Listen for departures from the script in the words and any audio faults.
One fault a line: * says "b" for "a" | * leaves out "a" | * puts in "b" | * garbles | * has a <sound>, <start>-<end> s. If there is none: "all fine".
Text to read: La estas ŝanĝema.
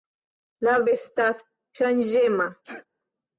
* has a sneeze, 2.6-2.9 s